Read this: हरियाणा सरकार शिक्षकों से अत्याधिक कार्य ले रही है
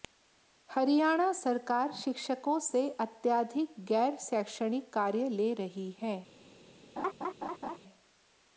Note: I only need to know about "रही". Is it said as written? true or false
true